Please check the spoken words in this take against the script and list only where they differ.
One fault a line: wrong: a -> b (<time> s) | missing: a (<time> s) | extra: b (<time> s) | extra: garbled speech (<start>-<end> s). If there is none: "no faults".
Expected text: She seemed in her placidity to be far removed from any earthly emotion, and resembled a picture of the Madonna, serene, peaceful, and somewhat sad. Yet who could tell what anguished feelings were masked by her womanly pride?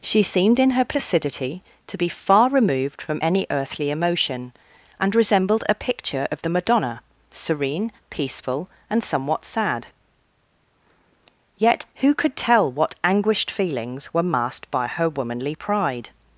no faults